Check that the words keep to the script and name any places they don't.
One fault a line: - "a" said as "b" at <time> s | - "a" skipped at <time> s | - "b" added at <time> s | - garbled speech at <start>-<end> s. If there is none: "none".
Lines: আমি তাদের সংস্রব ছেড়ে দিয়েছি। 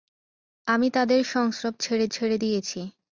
- "ছেড়ে" added at 2.1 s